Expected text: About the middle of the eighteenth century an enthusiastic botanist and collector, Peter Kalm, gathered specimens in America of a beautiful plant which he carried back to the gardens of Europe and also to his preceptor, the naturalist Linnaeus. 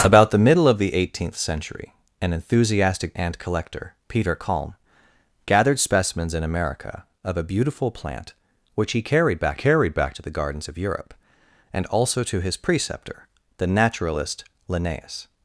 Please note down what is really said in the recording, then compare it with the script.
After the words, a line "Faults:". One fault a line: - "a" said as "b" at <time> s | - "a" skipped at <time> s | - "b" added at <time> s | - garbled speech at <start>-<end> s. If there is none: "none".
About the middle of the eighteenth century an enthusiastic and collector, Peter Kalm, gathered specimens in America of a beautiful plant which he carried back carried back to the gardens of Europe and also to his preceptor, the naturalist Linnaeus.
Faults:
- "botanist" skipped at 3.1 s
- "carried back" added at 9.6 s